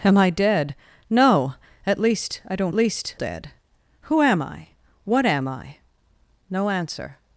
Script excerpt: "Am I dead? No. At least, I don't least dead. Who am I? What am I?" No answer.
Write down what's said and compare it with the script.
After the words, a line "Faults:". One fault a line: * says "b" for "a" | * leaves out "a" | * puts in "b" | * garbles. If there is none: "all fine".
"Am I dead? No. At least, I don't least dead. Who am I? What am I?" No answer.
Faults:
all fine